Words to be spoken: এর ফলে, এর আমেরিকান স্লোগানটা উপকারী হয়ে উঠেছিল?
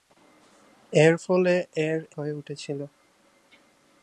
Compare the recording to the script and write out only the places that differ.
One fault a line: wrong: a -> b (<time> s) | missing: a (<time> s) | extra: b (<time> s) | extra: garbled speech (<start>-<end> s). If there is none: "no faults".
missing: আমেরিকান স্লোগানটা উপকারী (2.0 s)